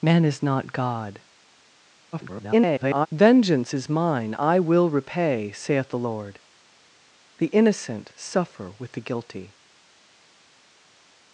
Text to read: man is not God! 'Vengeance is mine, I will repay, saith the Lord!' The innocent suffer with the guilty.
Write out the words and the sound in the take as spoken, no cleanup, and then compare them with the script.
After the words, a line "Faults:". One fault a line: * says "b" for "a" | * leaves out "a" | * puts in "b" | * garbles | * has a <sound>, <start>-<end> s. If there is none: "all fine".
man is not God! [garbled] 'Vengeance is mine, I will repay, saith the Lord!' The innocent suffer with the guilty.
Faults:
* garbles